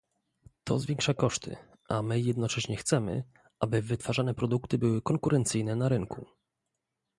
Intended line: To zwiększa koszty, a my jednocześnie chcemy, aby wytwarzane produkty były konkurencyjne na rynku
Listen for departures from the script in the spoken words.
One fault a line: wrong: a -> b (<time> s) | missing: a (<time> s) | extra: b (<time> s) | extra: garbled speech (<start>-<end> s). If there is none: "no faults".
no faults